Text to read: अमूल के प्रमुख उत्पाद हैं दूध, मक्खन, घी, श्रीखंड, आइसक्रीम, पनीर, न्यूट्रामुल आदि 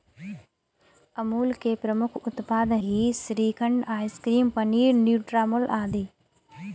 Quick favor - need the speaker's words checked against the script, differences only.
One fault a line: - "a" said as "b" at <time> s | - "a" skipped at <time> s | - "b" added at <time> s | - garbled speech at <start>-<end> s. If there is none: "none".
- "हैं दूध मक्खन" skipped at 2.7 s